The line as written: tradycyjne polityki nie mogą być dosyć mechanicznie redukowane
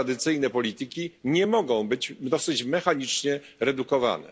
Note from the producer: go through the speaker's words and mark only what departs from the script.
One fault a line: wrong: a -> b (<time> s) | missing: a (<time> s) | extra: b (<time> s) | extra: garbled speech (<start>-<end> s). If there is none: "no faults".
no faults